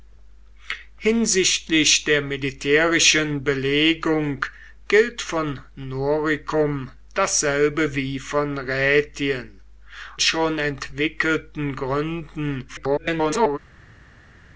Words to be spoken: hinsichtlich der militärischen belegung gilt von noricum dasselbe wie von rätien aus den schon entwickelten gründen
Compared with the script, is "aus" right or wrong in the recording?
wrong